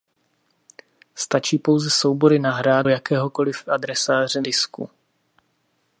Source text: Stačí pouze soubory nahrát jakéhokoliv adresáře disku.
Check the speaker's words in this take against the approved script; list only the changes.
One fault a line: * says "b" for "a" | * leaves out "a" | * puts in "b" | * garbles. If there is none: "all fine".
all fine